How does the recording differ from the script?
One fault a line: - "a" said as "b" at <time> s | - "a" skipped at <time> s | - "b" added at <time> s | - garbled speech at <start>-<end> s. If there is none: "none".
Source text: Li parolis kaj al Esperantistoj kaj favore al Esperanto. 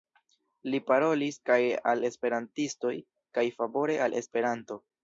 none